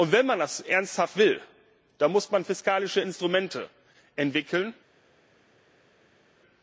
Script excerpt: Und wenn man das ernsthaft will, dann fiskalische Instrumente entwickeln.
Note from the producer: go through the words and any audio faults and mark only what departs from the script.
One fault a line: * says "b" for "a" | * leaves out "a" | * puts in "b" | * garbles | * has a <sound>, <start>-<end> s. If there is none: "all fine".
* puts in "muss man"